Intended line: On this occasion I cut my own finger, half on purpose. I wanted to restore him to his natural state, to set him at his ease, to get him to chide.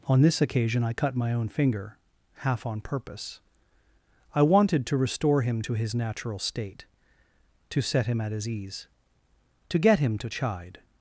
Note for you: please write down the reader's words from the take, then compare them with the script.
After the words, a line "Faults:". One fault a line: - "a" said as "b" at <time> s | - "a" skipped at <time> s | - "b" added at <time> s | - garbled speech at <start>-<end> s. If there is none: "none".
On this occasion I cut my own finger, half on purpose. I wanted to restore him to his natural state, to set him at his ease, to get him to chide.
Faults:
none